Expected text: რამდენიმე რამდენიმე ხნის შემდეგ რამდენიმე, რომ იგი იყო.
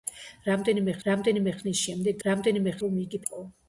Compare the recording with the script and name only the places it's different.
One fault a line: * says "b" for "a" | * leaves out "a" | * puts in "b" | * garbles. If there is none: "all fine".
all fine